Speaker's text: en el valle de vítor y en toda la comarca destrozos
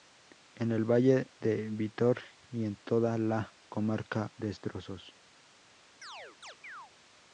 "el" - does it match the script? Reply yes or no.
yes